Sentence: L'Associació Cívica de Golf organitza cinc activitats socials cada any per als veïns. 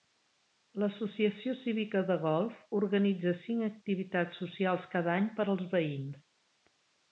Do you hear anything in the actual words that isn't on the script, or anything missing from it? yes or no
no